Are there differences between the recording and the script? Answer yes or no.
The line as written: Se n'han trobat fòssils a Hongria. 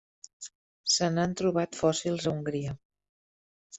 no